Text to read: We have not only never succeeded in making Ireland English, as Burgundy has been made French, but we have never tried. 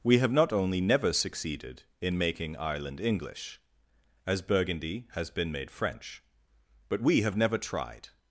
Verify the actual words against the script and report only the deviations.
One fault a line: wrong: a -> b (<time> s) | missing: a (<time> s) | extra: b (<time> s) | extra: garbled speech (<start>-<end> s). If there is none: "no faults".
no faults